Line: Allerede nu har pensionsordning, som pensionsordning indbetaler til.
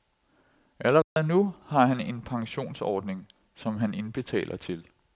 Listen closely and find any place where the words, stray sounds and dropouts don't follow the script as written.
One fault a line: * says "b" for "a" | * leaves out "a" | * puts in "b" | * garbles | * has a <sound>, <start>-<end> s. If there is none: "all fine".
* has a dropout, 1.0-1.2 s
* puts in "han en"
* says "han" for "pensionsordning"